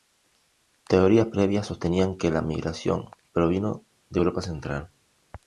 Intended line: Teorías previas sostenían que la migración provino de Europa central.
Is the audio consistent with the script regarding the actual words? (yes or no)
yes